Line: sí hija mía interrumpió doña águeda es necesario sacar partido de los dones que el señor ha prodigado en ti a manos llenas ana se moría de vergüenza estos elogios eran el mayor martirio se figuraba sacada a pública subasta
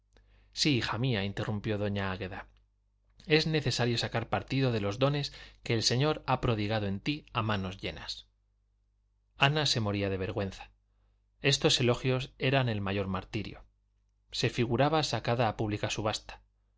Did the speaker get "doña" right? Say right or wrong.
right